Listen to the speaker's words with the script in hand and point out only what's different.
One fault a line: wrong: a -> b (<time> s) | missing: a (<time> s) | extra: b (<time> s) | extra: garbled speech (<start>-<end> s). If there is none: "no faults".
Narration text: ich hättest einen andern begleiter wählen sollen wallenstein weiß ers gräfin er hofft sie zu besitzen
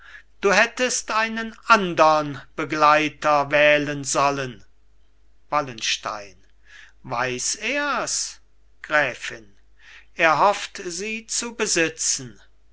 wrong: ich -> du (0.4 s)